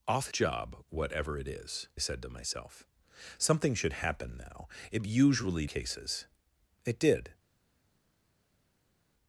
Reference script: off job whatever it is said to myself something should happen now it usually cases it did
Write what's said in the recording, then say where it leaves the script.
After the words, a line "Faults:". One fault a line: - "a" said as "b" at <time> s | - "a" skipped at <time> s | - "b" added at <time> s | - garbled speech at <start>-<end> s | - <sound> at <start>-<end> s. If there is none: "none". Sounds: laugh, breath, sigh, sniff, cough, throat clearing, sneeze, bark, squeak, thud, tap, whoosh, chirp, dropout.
off job whatever it is said to myself something should happen now it usually cases it did
Faults:
none